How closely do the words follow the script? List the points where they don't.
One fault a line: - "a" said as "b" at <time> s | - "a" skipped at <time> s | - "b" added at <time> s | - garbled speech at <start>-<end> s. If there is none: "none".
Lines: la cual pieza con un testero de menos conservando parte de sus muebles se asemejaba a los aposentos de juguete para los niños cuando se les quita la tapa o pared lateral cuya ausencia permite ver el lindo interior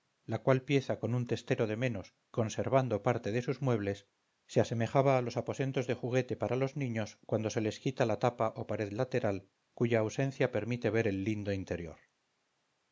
none